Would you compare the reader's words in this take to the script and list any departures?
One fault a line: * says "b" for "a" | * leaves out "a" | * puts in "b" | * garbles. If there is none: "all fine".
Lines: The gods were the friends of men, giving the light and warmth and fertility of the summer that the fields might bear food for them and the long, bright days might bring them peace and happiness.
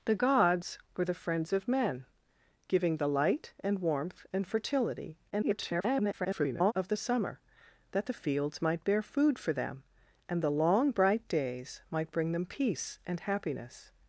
* garbles